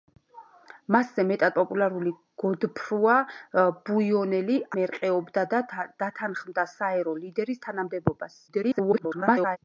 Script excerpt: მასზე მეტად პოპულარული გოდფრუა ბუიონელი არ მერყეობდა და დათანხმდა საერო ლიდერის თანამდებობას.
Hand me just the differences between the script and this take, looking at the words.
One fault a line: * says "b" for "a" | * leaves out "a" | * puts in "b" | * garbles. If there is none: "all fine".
* leaves out "არ"
* garbles